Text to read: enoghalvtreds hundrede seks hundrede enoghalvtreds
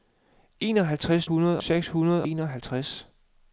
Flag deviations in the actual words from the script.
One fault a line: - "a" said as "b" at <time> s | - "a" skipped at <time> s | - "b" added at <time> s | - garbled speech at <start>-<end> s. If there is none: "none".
none